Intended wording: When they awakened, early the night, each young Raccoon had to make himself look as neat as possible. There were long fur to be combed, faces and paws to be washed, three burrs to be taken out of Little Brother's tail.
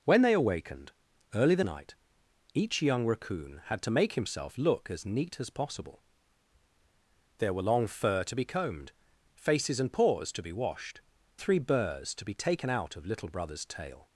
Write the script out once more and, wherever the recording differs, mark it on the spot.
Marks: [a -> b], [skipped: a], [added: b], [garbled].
When they awakened, early the night, each young Raccoon had to make himself look as neat as possible. There were long fur to be combed, faces and paws to be washed, three burrs to be taken out of Little Brother's tail.